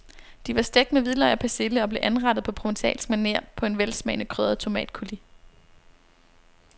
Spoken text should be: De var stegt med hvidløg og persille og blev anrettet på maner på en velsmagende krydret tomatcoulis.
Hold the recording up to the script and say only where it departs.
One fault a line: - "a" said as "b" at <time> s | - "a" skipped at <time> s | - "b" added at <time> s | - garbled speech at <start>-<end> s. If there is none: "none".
- "provencalsk" added at 2.5 s